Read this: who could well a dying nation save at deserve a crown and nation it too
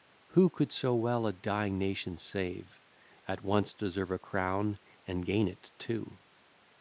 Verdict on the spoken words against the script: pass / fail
fail